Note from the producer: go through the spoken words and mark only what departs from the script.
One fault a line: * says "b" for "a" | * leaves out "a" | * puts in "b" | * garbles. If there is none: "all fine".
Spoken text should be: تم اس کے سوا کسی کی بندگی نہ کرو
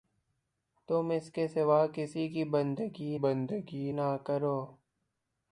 * puts in "بندگی"